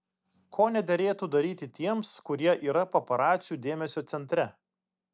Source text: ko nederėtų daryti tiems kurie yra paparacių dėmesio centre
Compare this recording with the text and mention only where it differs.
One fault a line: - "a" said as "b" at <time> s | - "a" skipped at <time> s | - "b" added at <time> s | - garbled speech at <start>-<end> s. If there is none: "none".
none